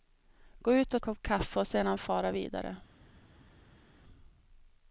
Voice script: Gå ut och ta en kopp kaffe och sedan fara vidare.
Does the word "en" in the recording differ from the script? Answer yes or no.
yes